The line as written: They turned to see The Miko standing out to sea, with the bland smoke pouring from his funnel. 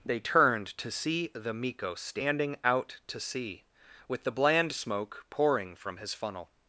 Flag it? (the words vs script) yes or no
no